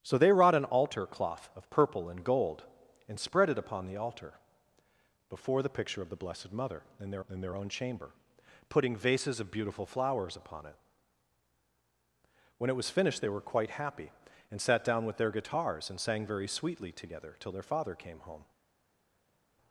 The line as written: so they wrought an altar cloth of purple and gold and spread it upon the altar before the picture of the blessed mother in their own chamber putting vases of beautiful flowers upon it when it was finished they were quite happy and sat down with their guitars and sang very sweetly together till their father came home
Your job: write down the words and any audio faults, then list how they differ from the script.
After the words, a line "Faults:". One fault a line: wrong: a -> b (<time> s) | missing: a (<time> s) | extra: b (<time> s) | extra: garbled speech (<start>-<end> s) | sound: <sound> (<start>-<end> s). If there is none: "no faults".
so they wrought an altar cloth of purple and gold and spread it upon the altar before the picture of the blessed mother in their in their own chamber putting vases of beautiful flowers upon it when it was finished they were quite happy and sat down with their guitars and sang very sweetly together till their father came home
Faults:
extra: in their (7.3 s)